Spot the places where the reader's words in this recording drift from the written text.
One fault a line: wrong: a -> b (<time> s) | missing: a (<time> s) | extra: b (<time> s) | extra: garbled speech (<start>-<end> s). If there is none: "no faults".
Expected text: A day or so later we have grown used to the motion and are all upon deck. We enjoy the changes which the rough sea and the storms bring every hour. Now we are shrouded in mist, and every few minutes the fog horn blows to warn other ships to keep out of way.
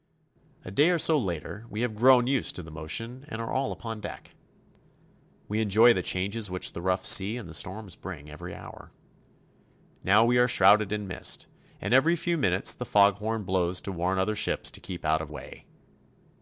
no faults